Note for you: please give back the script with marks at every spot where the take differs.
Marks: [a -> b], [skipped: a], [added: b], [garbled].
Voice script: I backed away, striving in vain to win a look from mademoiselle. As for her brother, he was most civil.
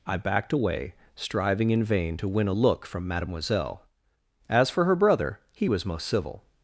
I backed away, striving in vain to win a look from mademoiselle. As for her brother, he was most civil.